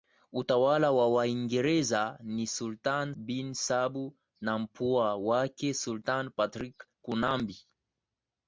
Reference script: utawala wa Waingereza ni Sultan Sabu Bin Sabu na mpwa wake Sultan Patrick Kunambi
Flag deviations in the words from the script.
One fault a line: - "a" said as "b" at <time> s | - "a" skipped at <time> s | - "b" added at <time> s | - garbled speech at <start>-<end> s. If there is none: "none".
- "Sabu" skipped at 3.1 s